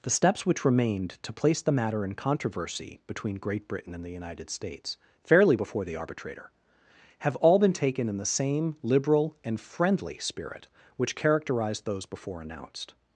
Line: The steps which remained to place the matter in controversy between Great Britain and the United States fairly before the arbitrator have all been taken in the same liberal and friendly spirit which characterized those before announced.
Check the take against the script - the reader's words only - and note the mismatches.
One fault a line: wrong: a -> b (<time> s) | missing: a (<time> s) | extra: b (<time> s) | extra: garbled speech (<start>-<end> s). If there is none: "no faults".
no faults